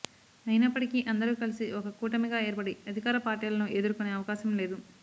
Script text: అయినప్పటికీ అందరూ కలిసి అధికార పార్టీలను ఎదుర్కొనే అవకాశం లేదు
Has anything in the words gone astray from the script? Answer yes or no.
yes